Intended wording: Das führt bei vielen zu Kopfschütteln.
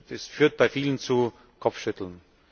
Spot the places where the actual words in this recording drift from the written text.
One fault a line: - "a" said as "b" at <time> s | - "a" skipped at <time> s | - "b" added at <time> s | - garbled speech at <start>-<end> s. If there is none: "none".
none